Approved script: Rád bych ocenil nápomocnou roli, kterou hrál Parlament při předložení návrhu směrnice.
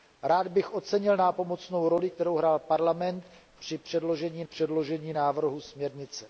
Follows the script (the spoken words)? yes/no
no